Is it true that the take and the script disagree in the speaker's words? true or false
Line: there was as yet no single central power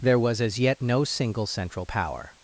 false